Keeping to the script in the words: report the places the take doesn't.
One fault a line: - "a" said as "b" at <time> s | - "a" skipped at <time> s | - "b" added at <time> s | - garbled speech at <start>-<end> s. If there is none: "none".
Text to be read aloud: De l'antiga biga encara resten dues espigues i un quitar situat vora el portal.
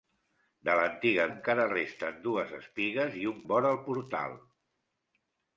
- "biga" skipped at 1.2 s
- "quitar situat" skipped at 3.4 s